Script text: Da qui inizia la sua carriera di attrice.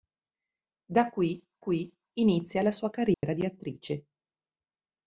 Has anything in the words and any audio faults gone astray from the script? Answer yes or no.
yes